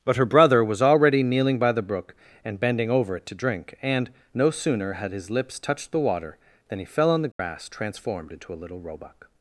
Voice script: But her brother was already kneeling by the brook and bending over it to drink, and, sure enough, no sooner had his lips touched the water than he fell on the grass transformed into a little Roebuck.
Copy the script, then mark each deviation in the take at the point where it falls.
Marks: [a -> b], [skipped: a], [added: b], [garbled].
But her brother was already kneeling by the brook and bending over it to drink, and, [skipped: sure enough,] no sooner had his lips touched the water than he fell on the grass transformed into a little Roebuck.